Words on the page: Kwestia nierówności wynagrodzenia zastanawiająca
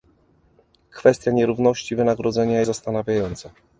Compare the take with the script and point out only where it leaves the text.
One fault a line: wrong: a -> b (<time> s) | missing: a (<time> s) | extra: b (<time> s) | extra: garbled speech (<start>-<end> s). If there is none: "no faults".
no faults